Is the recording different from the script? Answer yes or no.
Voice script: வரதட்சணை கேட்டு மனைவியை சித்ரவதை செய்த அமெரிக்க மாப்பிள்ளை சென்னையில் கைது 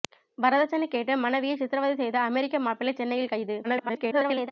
yes